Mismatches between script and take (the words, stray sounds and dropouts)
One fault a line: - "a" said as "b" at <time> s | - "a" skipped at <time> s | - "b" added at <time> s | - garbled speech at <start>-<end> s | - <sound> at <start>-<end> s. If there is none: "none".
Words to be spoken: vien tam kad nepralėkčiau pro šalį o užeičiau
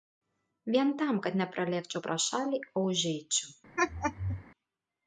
- laugh at 3.8-4.4 s